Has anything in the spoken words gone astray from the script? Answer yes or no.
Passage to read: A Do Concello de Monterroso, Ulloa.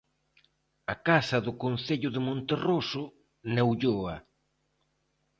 yes